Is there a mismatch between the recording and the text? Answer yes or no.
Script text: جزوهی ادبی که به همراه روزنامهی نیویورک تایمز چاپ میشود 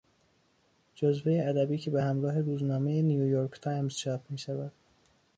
no